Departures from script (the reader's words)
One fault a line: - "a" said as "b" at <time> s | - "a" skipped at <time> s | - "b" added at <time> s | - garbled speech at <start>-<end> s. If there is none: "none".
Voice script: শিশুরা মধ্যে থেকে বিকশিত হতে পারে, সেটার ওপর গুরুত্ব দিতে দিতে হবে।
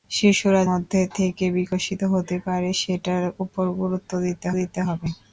none